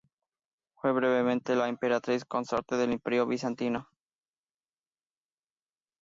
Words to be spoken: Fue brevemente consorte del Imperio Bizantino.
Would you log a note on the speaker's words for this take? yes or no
yes